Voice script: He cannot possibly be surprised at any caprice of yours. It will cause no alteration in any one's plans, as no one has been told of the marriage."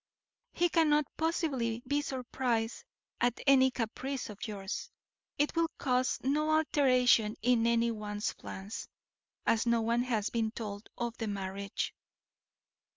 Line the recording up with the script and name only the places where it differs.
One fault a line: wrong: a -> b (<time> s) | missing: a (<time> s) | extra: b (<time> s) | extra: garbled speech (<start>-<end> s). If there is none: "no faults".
no faults